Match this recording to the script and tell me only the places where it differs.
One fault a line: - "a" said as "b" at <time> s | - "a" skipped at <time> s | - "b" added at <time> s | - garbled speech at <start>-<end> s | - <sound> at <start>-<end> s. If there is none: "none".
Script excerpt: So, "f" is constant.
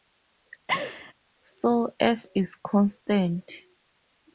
- laugh at 0.7-1.1 s